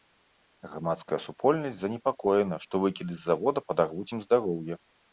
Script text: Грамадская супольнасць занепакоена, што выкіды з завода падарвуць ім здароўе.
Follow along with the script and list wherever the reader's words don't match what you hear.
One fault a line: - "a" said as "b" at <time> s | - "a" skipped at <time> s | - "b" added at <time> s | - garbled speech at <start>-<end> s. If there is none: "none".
none